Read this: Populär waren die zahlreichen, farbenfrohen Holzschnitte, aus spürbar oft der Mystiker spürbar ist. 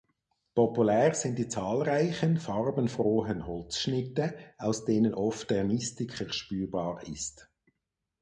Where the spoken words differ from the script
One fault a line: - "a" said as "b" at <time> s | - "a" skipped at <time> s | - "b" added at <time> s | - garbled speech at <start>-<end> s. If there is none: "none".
- "waren" said as "sind" at 1.1 s
- "spürbar" said as "denen" at 4.8 s